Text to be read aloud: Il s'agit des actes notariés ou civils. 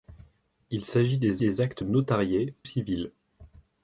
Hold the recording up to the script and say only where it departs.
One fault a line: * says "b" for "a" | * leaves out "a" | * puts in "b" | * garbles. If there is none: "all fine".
* puts in "des"
* leaves out "ou"